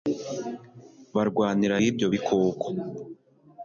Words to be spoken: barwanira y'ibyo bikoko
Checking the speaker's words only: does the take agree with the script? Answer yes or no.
yes